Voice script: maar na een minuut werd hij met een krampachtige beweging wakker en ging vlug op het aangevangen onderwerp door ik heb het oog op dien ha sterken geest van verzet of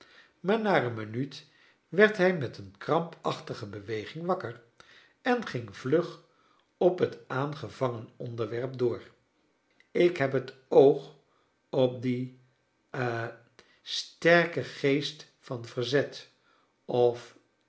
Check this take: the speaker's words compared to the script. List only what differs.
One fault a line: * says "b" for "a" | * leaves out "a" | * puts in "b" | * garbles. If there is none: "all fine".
all fine